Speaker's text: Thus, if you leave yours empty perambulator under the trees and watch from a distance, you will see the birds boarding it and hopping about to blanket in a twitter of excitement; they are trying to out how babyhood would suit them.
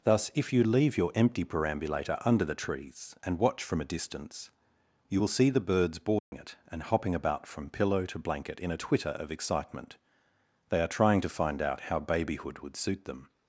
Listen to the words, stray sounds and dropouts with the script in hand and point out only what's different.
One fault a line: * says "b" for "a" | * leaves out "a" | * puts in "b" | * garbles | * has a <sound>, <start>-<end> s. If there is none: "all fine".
* says "your" for "yours"
* has a dropout, 6.2-6.3 s
* puts in "from pillow"
* puts in "find"